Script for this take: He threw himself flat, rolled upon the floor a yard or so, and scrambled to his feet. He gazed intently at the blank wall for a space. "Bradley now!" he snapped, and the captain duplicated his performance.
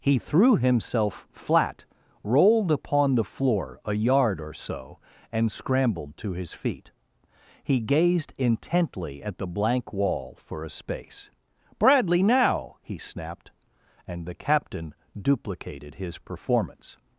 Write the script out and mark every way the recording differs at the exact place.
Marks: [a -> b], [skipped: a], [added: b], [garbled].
He threw himself flat, rolled upon the floor a yard or so, and scrambled to his feet. He gazed intently at the blank wall for a space. "Bradley now!" he snapped, and the captain duplicated his performance.